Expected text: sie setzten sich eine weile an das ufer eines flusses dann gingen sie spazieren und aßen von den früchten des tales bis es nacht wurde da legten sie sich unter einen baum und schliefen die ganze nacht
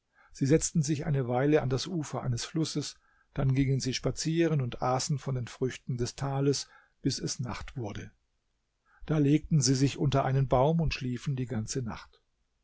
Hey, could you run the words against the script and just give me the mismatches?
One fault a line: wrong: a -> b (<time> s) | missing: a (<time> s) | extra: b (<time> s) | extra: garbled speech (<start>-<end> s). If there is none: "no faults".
no faults